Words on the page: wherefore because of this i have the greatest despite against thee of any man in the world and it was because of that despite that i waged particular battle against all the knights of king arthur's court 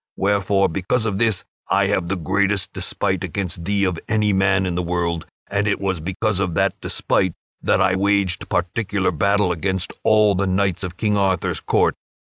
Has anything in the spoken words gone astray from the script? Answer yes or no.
no